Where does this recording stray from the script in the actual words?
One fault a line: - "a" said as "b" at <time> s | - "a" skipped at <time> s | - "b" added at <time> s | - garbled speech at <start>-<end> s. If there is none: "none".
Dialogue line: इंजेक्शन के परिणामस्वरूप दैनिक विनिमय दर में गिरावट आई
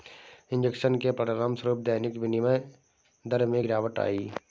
none